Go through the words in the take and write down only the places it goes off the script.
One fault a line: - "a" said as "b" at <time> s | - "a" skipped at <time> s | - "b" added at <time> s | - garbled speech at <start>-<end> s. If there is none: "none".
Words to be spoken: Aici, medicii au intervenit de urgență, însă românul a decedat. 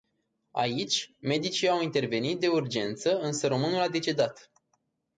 none